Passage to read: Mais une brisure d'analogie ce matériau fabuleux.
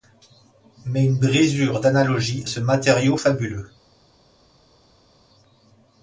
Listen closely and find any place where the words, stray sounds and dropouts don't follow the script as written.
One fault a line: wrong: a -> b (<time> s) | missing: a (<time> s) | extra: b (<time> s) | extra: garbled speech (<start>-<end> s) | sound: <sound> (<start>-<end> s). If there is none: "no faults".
no faults